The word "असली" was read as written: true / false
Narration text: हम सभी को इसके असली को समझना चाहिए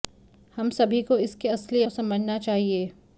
true